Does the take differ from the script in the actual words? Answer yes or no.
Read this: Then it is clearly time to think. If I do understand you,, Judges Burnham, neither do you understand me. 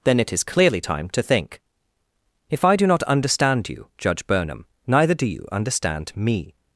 yes